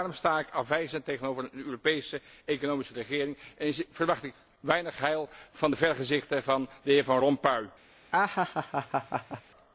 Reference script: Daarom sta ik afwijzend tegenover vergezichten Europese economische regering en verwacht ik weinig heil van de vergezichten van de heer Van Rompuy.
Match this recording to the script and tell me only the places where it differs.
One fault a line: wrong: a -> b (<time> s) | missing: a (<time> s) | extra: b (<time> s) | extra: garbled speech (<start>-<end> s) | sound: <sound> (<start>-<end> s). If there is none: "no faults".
wrong: vergezichten -> een (1.4 s)
sound: laugh (8.1-9.4 s)